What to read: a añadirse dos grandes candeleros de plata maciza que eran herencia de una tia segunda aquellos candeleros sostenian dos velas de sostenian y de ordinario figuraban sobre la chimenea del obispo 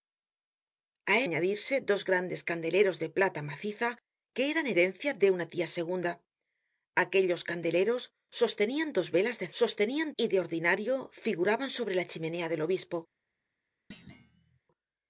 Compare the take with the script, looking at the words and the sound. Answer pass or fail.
fail